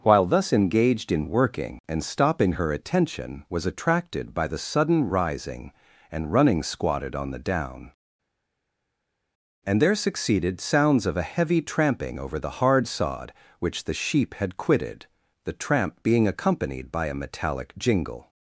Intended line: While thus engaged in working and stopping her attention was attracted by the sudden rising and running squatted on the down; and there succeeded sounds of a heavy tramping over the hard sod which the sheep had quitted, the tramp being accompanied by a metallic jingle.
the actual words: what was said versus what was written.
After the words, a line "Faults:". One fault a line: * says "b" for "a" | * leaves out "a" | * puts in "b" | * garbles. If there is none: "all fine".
While thus engaged in working and stopping her attention was attracted by the sudden rising and running squatted on the down; and there succeeded sounds of a heavy tramping over the hard sod which the sheep had quitted, the tramp being accompanied by a metallic jingle.
Faults:
all fine